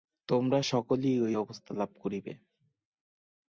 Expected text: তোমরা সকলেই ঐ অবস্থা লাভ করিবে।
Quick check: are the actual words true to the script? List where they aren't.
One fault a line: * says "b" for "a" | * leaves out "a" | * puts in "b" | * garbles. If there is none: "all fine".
all fine